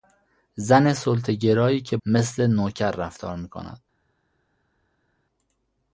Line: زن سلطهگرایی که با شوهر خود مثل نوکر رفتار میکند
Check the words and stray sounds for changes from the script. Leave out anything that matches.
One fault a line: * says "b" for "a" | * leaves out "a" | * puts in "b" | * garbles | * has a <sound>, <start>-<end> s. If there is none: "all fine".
* leaves out "با شوهر خود"